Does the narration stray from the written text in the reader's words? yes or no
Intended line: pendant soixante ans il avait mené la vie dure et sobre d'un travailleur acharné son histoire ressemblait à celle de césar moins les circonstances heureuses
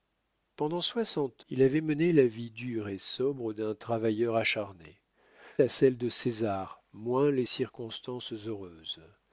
yes